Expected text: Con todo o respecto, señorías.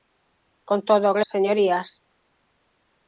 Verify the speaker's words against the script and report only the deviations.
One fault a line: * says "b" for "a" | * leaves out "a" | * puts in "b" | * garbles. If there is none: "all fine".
* leaves out "respecto"